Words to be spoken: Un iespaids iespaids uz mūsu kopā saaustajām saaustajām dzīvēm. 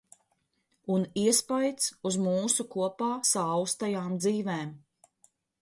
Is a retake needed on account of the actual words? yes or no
yes